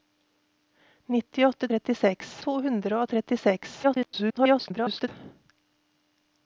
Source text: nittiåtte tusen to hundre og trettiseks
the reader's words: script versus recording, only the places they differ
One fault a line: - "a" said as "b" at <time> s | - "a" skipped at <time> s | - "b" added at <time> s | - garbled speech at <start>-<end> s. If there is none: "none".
- "tusen" said as "trettiseks" at 1.7 s
- garbled speech at 3.8-5.1 s